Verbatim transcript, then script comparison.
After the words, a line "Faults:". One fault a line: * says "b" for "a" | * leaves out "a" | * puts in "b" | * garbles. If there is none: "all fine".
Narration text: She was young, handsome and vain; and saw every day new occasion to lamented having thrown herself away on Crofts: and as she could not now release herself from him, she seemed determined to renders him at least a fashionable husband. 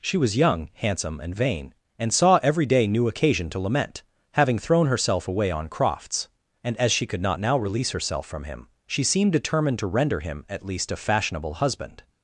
She was young, handsome and vain; and saw every day new occasion to lament having thrown herself away on Crofts: and as she could not now release herself from him, she seemed determined to render him at least a fashionable husband.
Faults:
* says "lament" for "lamented"
* says "render" for "renders"